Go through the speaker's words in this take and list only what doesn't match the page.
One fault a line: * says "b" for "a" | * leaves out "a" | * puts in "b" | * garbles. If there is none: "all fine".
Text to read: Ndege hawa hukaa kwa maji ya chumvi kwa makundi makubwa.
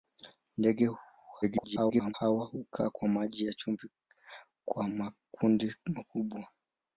* garbles